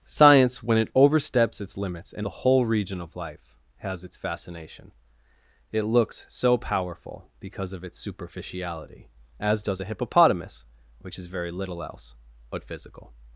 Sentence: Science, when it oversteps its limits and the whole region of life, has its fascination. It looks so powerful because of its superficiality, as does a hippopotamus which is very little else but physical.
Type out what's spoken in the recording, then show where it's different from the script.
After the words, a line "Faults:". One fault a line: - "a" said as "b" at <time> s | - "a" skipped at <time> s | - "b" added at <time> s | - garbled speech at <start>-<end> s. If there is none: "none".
Science, when it oversteps its limits and the whole region of life, has its fascination. It looks so powerful because of its superficiality, as does a hippopotamus which is very little else but physical.
Faults:
none